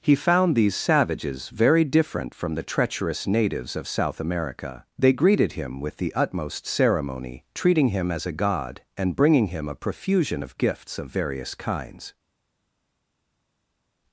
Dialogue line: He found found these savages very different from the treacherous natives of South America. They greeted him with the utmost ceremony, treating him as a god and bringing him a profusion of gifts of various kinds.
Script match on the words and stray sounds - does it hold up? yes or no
no